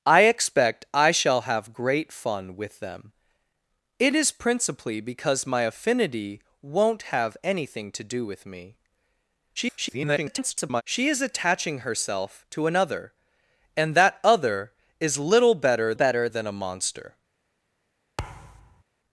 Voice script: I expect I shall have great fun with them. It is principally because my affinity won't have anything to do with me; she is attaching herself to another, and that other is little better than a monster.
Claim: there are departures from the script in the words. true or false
true